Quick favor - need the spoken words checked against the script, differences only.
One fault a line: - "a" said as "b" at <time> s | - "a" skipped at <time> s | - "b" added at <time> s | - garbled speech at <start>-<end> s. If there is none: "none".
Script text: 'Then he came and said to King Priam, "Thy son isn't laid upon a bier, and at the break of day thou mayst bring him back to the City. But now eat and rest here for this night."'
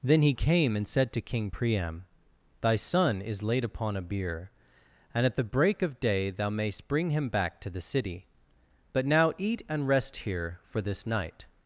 - "isn't" said as "is" at 3.2 s